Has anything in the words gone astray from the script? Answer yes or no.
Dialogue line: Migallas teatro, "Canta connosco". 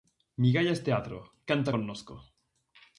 no